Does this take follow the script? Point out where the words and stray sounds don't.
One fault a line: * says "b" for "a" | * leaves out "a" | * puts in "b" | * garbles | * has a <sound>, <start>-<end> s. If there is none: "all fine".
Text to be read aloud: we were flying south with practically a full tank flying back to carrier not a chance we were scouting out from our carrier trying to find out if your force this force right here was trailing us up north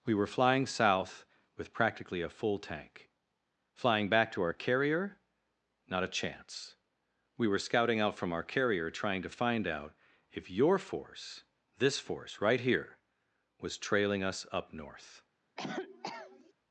* puts in "our"
* has a cough, 15.6-16.5 s